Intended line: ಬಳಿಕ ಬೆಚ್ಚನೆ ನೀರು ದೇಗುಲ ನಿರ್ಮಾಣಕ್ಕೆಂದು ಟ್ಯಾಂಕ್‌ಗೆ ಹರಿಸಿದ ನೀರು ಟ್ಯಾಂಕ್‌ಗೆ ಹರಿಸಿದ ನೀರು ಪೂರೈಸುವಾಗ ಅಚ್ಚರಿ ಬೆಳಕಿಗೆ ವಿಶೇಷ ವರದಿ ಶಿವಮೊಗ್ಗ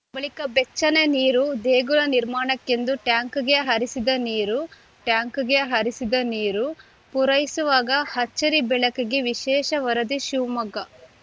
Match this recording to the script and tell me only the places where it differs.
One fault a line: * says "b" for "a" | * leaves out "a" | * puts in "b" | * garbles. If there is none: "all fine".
all fine